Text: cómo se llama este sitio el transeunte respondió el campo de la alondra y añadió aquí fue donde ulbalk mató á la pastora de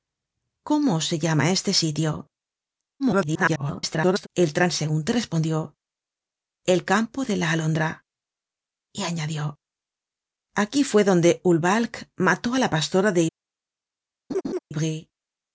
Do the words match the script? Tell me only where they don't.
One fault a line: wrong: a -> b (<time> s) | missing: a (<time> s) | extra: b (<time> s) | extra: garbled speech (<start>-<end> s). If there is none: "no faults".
extra: garbled speech (3.0-4.3 s)